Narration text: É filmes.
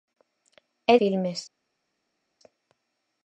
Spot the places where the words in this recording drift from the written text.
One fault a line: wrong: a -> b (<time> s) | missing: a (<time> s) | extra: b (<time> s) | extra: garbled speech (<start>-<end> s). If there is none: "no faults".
no faults